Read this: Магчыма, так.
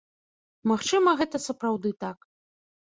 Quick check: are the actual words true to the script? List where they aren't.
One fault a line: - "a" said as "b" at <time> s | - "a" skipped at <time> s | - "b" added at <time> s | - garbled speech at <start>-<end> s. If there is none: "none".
- "гэта сапраўды" added at 1.2 s